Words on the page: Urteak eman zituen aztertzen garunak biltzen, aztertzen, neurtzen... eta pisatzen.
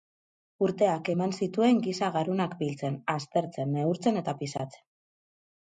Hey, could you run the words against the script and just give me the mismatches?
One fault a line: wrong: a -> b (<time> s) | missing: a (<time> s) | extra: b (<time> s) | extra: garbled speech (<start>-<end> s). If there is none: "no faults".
wrong: aztertzen -> giza (1.9 s)